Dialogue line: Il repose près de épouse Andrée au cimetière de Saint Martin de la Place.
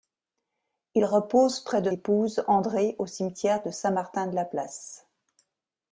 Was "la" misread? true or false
false